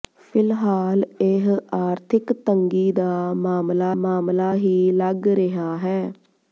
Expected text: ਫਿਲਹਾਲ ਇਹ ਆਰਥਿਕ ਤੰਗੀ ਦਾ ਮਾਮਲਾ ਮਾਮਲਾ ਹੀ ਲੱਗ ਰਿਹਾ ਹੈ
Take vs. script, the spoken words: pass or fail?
pass